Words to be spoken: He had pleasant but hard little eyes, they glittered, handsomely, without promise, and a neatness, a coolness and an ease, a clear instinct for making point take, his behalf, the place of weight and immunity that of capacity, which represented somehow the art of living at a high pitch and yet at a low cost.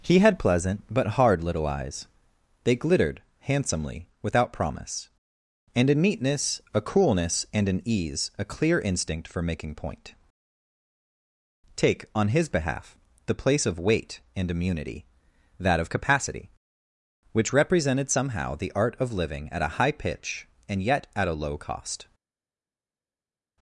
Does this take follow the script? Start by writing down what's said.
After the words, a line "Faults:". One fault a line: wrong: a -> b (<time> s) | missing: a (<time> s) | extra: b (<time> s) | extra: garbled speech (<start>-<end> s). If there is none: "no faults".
He had pleasant but hard little eyes, they glittered, handsomely, without promise, and a neatness, a coolness and an ease, a clear instinct for making point take, on his behalf, the place of weight and immunity that of capacity, which represented somehow the art of living at a high pitch and yet at a low cost.
Faults:
extra: on (12.1 s)